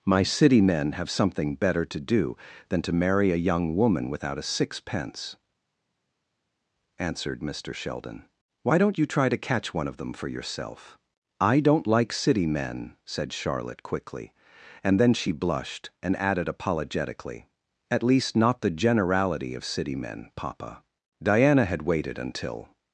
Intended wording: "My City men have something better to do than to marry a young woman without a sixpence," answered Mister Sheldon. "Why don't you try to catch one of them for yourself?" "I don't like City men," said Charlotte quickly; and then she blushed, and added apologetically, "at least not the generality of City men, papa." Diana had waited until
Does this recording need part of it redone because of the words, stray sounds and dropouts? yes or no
no